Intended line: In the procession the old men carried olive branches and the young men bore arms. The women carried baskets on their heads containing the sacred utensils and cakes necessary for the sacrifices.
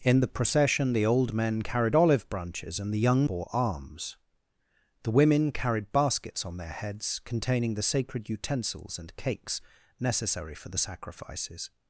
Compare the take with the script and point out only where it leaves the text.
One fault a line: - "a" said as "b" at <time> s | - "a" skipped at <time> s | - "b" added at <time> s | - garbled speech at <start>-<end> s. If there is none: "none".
- "men" skipped at 3.3 s